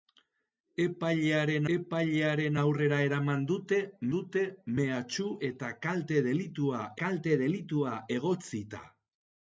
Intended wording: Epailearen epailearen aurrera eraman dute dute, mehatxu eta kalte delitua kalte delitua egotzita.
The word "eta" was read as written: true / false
true